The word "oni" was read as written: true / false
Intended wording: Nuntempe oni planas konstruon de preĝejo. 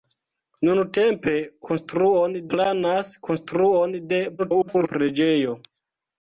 false